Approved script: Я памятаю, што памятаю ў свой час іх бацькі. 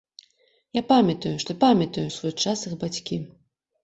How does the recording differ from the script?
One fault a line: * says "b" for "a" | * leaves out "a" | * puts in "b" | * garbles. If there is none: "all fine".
all fine